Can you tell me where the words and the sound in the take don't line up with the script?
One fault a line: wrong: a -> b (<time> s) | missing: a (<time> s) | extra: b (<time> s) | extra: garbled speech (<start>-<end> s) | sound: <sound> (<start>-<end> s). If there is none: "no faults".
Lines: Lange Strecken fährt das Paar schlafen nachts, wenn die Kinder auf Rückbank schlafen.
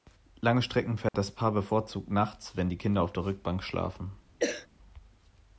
sound: dropout (1.1-1.1 s)
wrong: schlafen -> bevorzugt (1.5 s)
extra: der (3.1 s)
sound: cough (4.4-4.7 s)